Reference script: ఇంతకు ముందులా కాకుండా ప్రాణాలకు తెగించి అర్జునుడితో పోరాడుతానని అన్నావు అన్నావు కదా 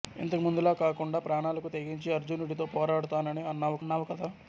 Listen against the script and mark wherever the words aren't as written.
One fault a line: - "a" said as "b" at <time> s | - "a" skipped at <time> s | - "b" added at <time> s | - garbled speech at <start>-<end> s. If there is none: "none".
none